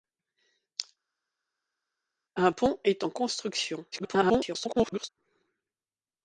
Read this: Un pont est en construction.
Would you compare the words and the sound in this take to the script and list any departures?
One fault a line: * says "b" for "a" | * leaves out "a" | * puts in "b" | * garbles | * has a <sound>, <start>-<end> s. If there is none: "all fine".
* garbles